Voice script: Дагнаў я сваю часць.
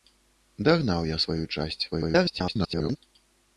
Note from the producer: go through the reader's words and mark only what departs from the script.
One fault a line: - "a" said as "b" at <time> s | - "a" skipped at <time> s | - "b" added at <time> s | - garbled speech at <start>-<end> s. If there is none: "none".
- garbled speech at 1.9-3.0 s